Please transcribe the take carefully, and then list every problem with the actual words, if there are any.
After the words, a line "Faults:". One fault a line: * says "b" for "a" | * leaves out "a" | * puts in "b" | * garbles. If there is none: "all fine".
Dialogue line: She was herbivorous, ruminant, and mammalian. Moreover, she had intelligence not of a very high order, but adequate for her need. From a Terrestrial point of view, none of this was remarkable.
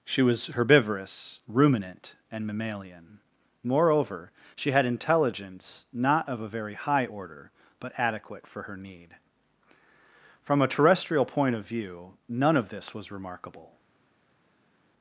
She was herbivorous, ruminant, and mammalian. Moreover, she had intelligence not of a very high order, but adequate for her need. From a Terrestrial point of view, none of this was remarkable.
Faults:
all fine